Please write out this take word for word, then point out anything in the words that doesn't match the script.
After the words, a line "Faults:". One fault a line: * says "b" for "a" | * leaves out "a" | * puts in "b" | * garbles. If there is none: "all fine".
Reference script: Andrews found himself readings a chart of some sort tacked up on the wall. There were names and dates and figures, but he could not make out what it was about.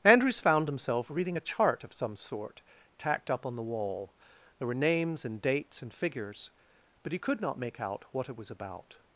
Andrews found himself reading a chart of some sort tacked up on the wall. There were names and dates and figures, but he could not make out what it was about.
Faults:
* says "reading" for "readings"